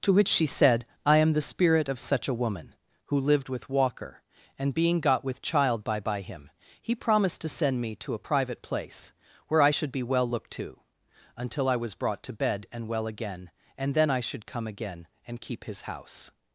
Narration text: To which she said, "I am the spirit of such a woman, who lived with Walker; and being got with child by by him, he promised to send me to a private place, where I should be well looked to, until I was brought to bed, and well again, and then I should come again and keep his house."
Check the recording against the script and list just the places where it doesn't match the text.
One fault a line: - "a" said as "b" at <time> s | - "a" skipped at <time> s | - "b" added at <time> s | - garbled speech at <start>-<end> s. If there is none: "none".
none